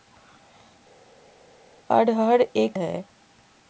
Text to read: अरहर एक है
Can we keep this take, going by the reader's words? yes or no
yes